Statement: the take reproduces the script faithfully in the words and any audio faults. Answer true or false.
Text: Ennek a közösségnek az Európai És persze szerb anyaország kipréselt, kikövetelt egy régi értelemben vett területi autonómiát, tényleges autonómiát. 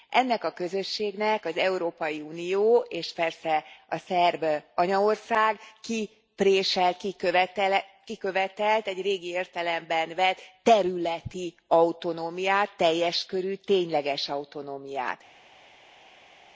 false